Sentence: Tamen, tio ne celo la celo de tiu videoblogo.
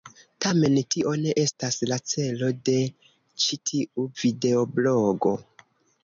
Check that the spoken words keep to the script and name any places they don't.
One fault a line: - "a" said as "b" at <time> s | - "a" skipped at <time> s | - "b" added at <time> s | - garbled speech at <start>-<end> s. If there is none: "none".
- "celo" said as "estas" at 1.4 s
- "ĉi" added at 3.4 s